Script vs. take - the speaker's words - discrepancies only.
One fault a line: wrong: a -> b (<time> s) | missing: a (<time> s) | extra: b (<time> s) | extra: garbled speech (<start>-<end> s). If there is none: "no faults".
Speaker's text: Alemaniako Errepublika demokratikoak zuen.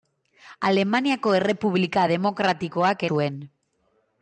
no faults